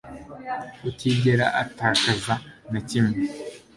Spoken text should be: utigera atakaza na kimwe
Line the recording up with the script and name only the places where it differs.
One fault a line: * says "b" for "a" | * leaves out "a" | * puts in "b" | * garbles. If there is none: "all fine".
all fine